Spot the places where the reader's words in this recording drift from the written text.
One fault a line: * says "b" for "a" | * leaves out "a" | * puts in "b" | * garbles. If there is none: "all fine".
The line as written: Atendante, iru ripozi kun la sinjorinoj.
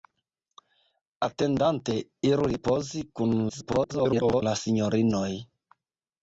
* garbles